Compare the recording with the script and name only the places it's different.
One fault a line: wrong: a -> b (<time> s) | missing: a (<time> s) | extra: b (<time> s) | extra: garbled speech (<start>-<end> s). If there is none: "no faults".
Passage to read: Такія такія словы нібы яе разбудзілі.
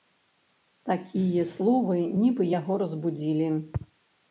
missing: такія (1.4 s)
wrong: яе -> яго (2.6 s)